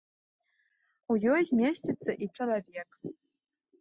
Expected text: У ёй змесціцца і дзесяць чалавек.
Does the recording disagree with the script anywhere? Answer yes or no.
yes